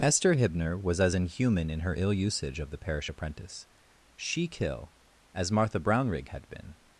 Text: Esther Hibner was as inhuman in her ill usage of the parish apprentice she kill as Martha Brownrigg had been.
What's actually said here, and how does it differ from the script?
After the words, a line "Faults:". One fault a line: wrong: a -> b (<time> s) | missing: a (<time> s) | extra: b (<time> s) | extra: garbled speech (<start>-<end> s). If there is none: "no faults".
Esther Hibner was as inhuman in her ill usage of the parish apprentice she kill as Martha Brownrigg had been.
Faults:
no faults